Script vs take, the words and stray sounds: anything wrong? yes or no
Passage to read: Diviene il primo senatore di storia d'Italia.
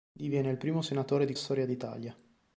no